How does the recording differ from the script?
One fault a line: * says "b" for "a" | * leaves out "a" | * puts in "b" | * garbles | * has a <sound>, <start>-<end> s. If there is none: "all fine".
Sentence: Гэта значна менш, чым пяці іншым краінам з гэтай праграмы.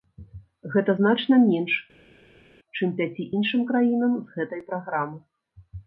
all fine